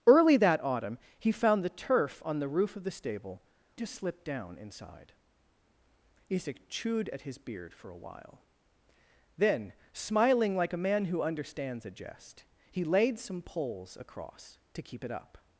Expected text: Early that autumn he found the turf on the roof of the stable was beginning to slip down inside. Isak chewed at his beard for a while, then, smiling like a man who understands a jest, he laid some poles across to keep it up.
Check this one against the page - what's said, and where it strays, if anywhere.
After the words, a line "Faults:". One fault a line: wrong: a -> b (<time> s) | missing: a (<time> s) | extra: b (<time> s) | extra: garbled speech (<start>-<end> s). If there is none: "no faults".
Early that autumn he found the turf on the roof of the stable to slip down inside. Isak chewed at his beard for a while, then, smiling like a man who understands a jest, he laid some poles across to keep it up.
Faults:
missing: was beginning (3.4 s)